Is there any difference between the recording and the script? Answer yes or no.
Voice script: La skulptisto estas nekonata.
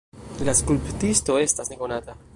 no